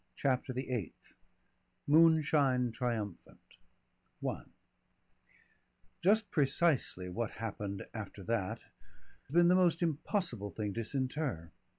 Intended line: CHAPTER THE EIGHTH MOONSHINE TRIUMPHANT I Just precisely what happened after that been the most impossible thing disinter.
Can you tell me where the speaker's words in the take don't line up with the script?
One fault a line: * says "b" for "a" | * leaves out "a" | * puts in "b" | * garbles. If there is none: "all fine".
all fine